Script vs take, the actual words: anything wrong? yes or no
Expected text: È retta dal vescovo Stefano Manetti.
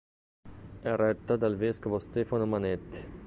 no